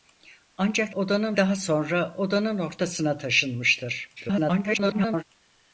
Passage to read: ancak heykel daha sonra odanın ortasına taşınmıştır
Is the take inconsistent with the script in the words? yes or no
yes